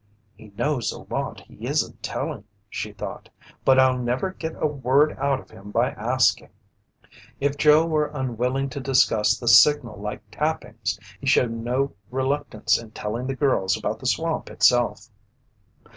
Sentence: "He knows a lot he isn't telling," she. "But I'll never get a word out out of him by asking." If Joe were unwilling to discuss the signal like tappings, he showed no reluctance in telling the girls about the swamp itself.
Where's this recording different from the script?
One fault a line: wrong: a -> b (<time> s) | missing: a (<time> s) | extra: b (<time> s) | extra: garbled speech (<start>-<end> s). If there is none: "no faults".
extra: thought (2.9 s)
missing: out (5.4 s)